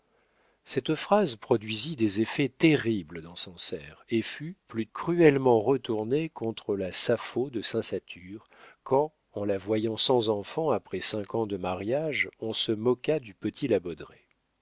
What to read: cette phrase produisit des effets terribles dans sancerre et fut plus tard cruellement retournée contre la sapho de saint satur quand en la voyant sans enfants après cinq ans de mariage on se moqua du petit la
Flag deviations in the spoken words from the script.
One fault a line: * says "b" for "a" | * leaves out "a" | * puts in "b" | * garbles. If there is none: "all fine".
* leaves out "tard"